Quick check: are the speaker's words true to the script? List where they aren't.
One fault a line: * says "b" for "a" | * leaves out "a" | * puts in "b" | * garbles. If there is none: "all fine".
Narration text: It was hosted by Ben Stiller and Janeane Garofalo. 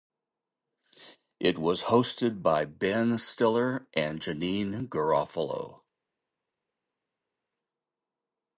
all fine